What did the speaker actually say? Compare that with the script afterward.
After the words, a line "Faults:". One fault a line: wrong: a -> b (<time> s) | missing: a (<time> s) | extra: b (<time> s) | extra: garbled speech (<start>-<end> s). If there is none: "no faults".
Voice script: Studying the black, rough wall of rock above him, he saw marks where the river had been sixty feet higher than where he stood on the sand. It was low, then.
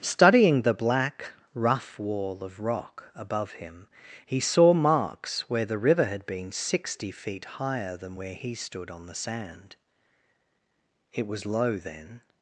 Studying the black, rough wall of rock above him, he saw marks where the river had been sixty feet higher than where he stood on the sand. It was low, then.
Faults:
no faults